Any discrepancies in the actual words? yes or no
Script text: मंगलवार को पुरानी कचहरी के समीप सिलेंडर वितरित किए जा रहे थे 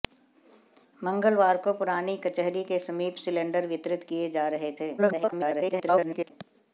yes